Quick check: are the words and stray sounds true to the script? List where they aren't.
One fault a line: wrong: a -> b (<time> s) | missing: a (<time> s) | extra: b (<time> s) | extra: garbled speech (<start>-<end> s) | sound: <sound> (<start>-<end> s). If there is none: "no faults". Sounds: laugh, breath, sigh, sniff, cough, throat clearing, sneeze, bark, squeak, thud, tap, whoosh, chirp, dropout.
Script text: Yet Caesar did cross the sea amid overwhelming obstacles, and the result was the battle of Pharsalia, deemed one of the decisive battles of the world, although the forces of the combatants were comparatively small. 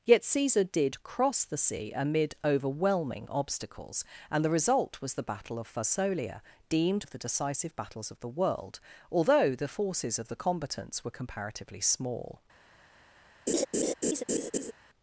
missing: one (7.0 s)
sound: laugh (13.5-14.7 s)